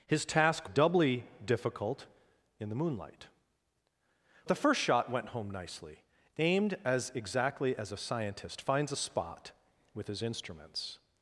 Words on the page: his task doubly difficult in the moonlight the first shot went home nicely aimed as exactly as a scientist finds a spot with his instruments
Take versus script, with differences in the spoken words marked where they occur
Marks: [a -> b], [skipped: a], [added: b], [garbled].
his task doubly difficult in the moonlight the first shot went home nicely aimed as exactly as a scientist finds a spot with his instruments